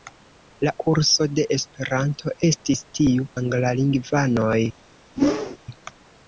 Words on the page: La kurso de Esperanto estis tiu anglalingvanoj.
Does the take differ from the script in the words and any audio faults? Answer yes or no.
yes